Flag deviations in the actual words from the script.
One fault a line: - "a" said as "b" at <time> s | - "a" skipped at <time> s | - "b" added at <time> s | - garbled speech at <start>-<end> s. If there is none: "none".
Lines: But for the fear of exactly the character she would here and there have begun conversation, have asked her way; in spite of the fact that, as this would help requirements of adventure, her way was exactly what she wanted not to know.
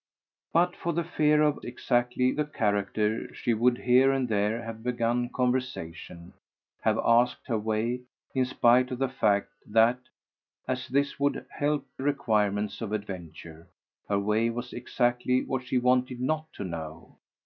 none